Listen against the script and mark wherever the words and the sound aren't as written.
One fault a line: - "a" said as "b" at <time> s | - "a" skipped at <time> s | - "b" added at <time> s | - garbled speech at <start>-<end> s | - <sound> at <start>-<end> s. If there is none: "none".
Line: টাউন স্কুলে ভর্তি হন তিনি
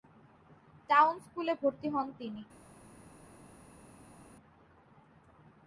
none